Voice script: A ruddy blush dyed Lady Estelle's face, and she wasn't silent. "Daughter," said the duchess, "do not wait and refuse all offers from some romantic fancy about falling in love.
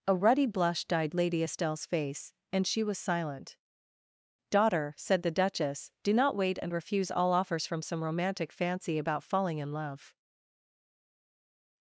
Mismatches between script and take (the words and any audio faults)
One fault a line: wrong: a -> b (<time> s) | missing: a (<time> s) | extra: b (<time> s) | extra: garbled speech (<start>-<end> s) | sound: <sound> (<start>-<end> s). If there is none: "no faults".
wrong: wasn't -> was (2.8 s)